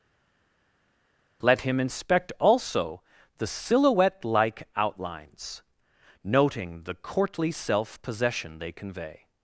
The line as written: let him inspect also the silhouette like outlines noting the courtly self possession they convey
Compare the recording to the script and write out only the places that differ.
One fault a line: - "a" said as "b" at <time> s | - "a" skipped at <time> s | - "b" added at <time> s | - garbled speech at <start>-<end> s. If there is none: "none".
none